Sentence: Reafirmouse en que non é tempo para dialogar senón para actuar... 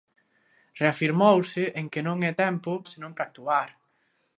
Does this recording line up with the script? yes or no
no